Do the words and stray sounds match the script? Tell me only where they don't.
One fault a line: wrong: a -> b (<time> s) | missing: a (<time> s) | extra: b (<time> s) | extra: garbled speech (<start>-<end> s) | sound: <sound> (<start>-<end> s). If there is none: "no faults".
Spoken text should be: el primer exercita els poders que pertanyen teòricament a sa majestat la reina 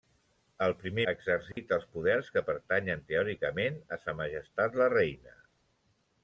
sound: dropout (1.5-1.6 s)